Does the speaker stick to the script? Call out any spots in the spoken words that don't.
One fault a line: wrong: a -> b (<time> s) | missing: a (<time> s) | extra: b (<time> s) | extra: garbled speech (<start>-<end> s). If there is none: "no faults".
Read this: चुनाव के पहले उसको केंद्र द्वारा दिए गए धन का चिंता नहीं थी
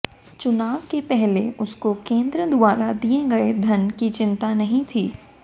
wrong: का -> की (4.0 s)